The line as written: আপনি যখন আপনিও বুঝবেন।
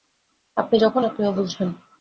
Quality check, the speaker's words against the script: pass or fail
pass